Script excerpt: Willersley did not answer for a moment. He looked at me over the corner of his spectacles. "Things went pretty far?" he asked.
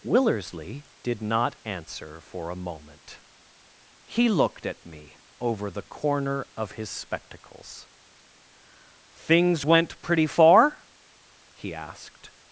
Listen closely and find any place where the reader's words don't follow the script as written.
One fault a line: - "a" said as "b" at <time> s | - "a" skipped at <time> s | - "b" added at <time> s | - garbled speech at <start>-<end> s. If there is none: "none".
none